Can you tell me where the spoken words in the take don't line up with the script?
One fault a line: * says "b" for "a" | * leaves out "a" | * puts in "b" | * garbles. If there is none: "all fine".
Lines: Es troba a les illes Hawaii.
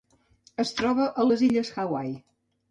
all fine